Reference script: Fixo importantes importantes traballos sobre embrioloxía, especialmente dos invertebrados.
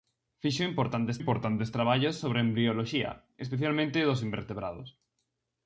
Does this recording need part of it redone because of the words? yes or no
no